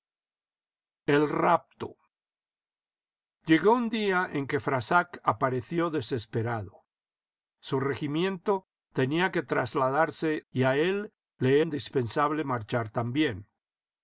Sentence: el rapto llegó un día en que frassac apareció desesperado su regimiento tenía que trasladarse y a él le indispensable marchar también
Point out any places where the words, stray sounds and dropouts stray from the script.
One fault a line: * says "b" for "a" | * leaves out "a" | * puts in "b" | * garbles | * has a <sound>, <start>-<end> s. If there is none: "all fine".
all fine